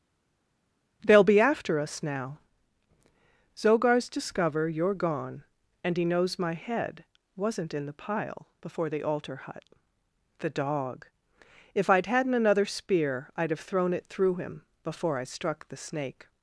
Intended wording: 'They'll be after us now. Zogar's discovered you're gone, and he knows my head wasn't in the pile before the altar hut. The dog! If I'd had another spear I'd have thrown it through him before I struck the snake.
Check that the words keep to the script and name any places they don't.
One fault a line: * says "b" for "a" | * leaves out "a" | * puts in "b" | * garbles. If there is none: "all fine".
* says "discover" for "discovered"
* says "hadn't" for "had"